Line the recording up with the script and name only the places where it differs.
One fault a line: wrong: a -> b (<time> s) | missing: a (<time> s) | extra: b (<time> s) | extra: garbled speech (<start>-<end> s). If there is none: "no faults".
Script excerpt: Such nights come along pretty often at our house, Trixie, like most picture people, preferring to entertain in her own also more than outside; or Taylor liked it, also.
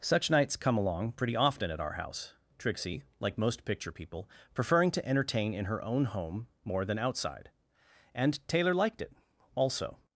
wrong: also -> home (6.0 s)
wrong: or -> and (8.1 s)